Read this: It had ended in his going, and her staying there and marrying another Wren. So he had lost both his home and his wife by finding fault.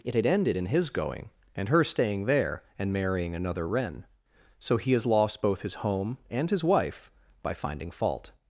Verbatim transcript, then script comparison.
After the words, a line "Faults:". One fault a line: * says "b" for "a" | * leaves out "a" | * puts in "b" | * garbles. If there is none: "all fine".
It had ended in his going, and her staying there and marrying another Wren. So he has lost both his home and his wife by finding fault.
Faults:
* says "has" for "had"